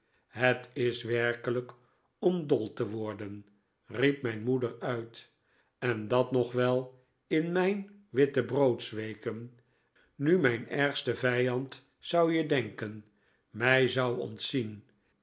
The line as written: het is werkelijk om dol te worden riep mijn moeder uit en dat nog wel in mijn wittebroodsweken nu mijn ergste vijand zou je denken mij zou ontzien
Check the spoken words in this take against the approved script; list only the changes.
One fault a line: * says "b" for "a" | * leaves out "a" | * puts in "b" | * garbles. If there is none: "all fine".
all fine